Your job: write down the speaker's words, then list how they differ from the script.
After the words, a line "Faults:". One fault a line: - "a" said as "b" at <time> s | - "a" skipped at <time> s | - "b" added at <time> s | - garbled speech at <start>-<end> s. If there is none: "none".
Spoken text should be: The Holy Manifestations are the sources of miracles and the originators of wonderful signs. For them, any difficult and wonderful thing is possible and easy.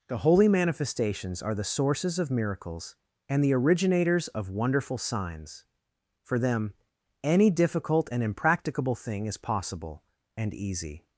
The Holy Manifestations are the sources of miracles and the originators of wonderful signs. For them, any difficult and impracticable thing is possible and easy.
Faults:
- "wonderful" said as "impracticable" at 8.2 s